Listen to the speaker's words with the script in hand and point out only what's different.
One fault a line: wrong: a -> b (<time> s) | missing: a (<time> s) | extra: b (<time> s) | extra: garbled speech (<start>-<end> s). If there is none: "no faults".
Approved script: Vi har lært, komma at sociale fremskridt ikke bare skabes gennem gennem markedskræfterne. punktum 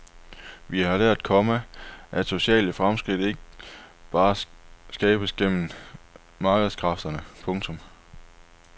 missing: gennem (5.7 s)